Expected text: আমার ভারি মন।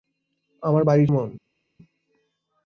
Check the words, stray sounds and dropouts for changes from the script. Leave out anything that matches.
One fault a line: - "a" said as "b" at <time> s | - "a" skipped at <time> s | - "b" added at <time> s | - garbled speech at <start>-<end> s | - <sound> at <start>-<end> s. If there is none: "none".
none